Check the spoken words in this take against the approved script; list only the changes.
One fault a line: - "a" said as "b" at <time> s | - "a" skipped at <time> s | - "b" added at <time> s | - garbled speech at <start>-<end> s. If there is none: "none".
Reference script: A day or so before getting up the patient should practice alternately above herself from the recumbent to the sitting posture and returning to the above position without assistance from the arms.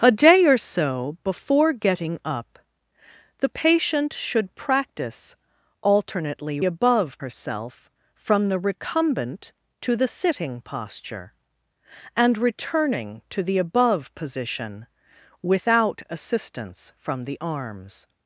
none